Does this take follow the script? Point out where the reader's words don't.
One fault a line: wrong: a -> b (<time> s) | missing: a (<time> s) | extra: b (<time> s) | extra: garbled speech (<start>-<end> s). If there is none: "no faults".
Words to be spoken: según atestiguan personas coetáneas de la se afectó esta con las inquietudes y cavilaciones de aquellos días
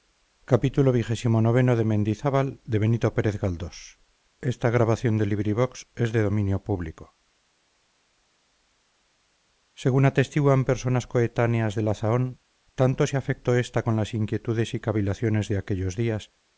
extra: zahón tanto (11.9 s)